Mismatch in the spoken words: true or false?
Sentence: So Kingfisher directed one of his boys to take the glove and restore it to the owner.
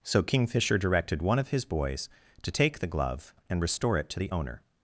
false